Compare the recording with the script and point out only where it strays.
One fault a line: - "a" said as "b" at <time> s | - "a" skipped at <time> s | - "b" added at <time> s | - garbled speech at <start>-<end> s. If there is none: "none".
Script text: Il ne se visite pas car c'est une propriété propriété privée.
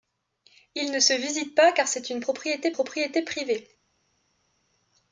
none